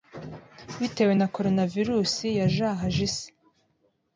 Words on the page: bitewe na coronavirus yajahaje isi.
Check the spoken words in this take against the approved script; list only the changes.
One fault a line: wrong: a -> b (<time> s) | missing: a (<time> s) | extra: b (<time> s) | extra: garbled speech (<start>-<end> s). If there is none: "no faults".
no faults